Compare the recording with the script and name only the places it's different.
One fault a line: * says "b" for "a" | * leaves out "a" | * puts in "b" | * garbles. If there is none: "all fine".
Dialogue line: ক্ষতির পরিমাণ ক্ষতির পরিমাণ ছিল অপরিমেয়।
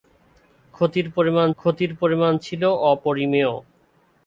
all fine